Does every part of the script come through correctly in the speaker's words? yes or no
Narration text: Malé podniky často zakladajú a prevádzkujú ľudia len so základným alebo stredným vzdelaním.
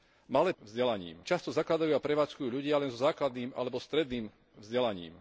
no